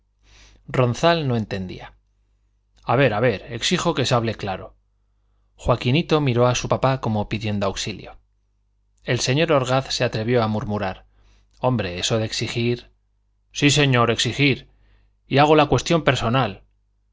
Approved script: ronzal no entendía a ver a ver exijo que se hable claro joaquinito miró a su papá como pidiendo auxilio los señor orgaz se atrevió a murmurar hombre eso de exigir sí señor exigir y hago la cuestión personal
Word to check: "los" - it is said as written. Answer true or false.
false